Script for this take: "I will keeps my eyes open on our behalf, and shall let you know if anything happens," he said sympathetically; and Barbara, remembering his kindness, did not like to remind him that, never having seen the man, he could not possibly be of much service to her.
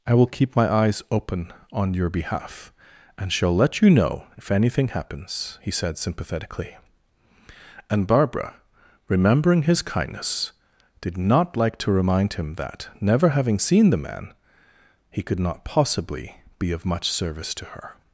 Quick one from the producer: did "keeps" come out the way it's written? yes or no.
no